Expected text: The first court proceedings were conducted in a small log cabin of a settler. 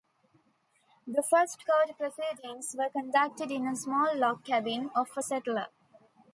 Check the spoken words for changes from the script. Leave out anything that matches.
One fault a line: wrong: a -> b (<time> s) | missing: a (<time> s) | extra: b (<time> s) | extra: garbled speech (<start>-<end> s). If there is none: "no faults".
no faults